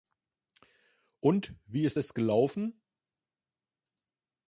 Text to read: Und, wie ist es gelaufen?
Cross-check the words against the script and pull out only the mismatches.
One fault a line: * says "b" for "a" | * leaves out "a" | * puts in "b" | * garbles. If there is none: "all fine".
all fine